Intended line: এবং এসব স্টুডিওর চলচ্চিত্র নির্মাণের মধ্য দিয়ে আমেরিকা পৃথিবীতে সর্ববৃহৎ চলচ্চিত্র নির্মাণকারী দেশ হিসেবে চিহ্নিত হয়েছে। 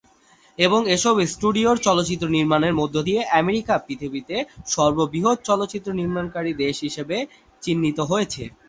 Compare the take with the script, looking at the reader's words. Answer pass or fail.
pass